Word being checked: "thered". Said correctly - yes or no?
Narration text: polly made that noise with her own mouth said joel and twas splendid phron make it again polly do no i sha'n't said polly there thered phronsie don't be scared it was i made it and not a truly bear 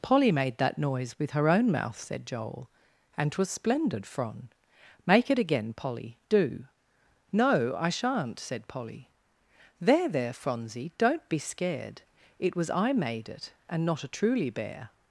no